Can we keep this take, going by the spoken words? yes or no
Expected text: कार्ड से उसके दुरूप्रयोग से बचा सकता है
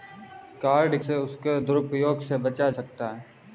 yes